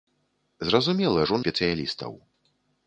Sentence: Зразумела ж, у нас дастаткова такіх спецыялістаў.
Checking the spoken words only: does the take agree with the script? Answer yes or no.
no